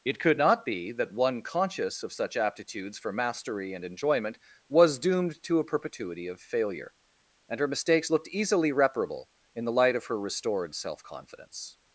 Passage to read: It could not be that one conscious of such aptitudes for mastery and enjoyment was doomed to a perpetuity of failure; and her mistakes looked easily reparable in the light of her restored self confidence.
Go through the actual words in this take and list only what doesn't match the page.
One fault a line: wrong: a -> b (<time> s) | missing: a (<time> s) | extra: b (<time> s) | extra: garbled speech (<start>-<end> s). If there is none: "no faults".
no faults